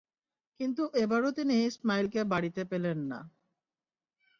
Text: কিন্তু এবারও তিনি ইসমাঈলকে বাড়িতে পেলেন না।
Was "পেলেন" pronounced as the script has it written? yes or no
yes